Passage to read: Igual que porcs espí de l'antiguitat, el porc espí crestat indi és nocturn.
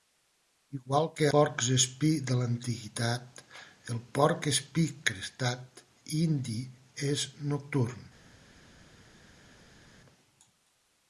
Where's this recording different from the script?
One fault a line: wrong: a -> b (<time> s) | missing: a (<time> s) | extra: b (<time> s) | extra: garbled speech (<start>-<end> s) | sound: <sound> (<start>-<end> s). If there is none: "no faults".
no faults